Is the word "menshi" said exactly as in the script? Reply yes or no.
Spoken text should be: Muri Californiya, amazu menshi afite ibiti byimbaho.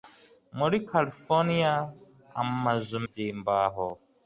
no